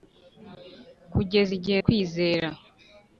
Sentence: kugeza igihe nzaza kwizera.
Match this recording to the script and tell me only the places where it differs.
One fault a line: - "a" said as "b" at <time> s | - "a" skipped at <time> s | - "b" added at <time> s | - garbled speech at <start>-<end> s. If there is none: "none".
- "nzaza" skipped at 1.8 s